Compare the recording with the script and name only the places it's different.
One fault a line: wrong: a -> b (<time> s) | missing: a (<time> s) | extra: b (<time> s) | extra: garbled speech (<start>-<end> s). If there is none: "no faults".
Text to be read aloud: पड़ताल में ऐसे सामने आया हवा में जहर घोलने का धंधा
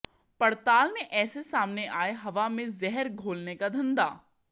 no faults